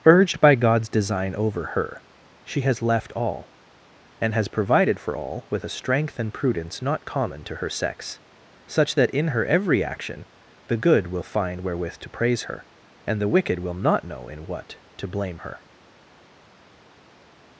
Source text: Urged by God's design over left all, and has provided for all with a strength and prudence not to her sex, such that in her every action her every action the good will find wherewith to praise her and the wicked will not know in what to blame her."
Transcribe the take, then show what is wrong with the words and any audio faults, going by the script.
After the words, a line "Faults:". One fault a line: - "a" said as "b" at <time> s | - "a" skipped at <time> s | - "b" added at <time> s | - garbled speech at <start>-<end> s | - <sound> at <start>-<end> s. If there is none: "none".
Urged by God's design over her she has left all, and has provided for all with a strength and prudence not common to her sex, such that in her every action the good will find wherewith to praise her and the wicked will not know in what to blame her."
Faults:
- "her she has" added at 1.7 s
- "common" added at 7.0 s
- "her every action" skipped at 10.2 s